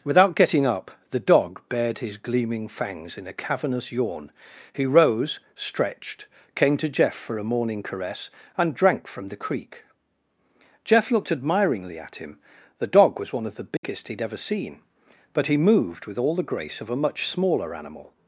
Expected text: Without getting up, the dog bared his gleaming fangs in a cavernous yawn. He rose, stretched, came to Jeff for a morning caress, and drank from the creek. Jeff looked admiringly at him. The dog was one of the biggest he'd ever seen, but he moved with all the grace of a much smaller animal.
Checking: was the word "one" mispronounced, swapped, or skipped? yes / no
no